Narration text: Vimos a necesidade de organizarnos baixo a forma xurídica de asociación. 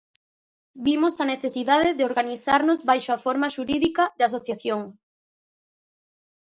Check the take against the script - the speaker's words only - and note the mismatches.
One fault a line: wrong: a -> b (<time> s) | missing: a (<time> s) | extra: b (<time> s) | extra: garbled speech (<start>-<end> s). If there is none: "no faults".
no faults